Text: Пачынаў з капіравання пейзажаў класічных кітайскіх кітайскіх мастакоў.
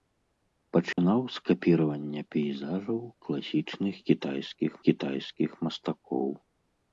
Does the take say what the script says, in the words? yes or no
yes